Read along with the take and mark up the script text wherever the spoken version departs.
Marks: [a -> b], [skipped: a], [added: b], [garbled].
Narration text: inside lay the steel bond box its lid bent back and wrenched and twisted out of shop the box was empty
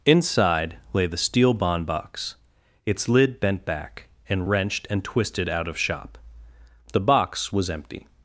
inside lay the steel bond box its lid bent back and wrenched and twisted out of shop the box was empty